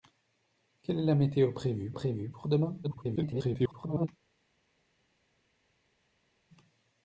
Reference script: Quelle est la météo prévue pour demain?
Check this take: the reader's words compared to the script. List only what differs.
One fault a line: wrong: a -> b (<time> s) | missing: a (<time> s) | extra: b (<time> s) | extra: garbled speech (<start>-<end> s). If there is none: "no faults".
extra: prévue (1.9 s)
extra: garbled speech (2.8-4.1 s)